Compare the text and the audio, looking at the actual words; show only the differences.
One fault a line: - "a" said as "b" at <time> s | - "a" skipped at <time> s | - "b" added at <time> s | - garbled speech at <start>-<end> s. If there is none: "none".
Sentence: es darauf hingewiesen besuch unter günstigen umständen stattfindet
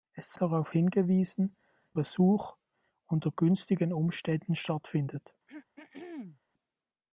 none